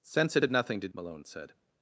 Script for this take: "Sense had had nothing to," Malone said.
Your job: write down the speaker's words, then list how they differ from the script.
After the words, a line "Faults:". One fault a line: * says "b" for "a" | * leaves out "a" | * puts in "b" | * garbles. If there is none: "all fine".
"Sense had had nothing to," Malone said.
Faults:
all fine